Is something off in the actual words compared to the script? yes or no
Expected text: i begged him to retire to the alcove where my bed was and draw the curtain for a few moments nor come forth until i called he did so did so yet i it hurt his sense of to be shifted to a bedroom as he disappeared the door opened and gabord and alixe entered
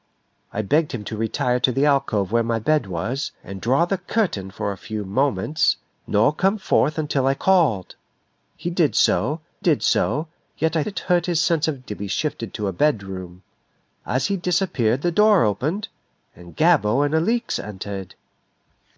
no